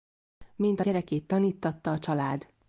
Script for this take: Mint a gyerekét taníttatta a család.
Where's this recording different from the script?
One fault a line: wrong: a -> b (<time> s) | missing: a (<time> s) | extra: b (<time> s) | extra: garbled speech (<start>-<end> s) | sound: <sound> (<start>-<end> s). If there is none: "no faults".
no faults